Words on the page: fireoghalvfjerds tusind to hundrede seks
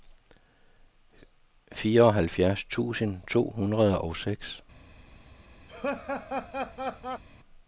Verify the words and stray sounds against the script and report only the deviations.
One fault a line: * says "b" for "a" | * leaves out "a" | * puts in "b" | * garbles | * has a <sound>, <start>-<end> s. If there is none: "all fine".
* puts in "og"
* has a laugh, 5.7-7.2 s